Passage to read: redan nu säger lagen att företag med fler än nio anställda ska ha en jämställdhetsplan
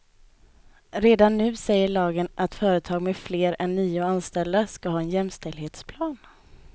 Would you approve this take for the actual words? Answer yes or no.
yes